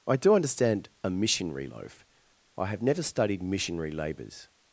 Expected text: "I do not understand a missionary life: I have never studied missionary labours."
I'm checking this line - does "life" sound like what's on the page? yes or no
no